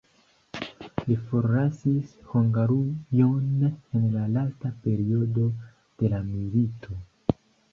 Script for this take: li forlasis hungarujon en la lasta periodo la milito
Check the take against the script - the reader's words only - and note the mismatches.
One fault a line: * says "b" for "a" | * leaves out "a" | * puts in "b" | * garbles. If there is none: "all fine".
* puts in "de"